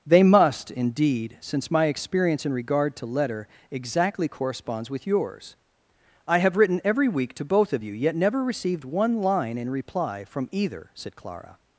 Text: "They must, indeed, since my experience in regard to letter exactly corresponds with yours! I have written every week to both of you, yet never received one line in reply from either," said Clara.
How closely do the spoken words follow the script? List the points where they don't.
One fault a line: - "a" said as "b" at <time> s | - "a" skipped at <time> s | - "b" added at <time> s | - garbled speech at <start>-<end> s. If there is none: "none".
none